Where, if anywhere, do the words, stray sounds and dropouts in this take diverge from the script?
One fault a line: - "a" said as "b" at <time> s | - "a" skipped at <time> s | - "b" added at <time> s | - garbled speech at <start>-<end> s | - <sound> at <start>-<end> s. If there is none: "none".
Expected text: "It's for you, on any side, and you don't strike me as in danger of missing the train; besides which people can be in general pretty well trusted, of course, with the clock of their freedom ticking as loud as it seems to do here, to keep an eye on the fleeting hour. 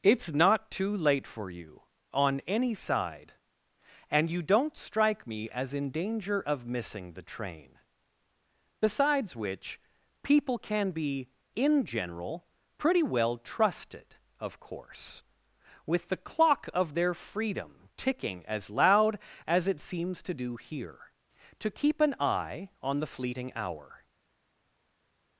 - "not too late" added at 0.3 s